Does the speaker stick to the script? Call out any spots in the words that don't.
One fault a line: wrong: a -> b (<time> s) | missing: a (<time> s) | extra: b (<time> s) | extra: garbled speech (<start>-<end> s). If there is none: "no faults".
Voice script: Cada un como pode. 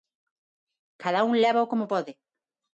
extra: lévao (1.4 s)